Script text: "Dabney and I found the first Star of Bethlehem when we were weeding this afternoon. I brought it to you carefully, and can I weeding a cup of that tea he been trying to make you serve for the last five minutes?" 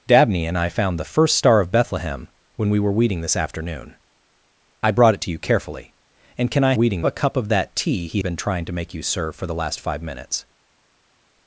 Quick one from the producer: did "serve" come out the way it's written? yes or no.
yes